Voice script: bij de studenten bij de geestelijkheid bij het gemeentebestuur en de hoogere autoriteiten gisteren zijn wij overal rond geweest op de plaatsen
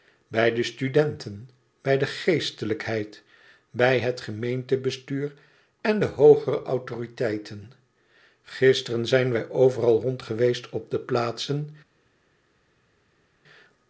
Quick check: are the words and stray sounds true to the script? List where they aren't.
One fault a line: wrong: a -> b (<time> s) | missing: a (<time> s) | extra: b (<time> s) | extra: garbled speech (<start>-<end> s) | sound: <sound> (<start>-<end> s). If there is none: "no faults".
no faults